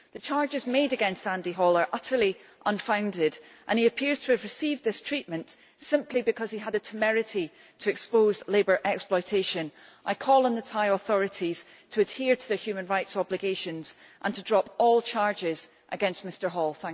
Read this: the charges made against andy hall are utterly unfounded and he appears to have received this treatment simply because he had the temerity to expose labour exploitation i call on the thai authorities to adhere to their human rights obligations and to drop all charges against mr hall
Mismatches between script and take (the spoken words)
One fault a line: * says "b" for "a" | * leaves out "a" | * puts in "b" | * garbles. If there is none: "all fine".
all fine